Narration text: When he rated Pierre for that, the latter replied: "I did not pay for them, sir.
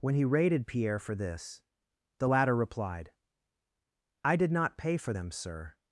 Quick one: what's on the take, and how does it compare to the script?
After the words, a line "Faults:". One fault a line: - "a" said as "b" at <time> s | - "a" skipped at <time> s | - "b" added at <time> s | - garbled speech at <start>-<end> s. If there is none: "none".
When he rated Pierre for this, the latter replied: "I did not pay for them, sir.
Faults:
- "that" said as "this" at 1.1 s